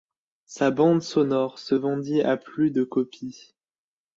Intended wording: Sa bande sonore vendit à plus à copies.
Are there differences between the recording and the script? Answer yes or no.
yes